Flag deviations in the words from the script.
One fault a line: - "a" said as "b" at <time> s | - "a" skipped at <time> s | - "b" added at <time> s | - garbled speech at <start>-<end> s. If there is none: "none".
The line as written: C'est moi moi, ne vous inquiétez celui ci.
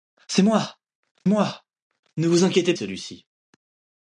none